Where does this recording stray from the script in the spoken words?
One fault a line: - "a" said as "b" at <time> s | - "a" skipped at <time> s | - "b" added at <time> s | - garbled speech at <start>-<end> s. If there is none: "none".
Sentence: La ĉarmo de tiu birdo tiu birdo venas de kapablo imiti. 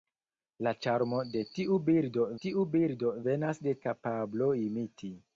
none